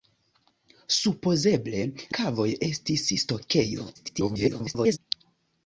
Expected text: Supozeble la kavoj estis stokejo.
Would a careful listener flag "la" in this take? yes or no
yes